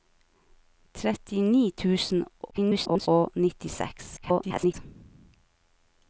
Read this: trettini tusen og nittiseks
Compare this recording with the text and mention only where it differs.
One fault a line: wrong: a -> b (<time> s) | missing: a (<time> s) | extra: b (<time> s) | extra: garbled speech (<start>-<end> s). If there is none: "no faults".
extra: garbled speech (2.5-3.1 s)
extra: garbled speech (4.2-4.7 s)